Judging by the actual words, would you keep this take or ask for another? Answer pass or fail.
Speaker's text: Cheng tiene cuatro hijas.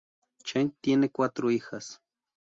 pass